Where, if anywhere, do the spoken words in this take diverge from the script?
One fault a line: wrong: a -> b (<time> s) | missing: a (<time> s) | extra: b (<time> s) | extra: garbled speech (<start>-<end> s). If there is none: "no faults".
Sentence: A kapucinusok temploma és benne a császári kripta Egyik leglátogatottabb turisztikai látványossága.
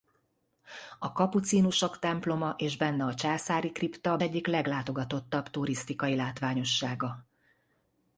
no faults